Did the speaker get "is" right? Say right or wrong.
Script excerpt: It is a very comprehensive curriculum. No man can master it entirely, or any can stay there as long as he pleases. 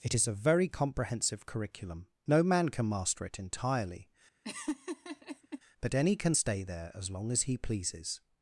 right